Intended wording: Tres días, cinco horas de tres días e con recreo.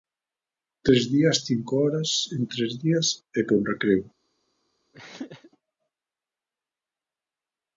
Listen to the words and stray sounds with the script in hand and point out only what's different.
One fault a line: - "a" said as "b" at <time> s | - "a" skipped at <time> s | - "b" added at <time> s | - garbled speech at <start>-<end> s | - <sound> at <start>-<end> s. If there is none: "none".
- "de" said as "en" at 2.3 s
- throat clearing at 4.9-5.5 s